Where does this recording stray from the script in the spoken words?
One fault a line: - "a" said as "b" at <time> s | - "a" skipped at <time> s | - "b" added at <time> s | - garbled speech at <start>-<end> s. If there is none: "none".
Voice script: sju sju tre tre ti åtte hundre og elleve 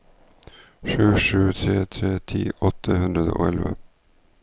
none